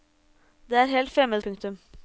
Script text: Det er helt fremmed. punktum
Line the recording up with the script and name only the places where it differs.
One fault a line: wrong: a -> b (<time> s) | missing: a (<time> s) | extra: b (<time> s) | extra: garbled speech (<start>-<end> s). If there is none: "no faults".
no faults